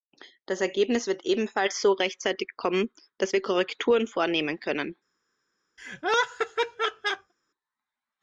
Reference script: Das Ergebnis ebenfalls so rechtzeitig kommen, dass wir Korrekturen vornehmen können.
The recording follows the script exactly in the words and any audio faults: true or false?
false